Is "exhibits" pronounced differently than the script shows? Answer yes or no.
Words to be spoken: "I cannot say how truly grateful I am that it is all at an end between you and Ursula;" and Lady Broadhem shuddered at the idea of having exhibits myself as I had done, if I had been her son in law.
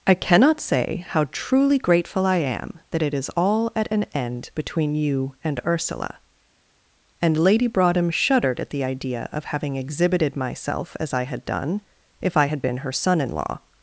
yes